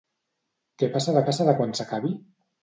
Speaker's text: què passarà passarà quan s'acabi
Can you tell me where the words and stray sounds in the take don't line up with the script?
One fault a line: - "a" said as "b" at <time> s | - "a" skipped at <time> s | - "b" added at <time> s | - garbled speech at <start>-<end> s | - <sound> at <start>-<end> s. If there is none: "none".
none